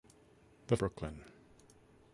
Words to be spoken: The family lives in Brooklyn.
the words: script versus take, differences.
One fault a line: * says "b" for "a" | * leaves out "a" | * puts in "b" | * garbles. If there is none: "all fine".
* leaves out "family lives in"